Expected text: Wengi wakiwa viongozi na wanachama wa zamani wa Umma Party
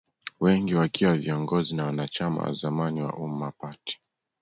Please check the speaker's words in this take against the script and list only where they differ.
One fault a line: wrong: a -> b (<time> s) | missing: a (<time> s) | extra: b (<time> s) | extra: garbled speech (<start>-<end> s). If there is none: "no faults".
no faults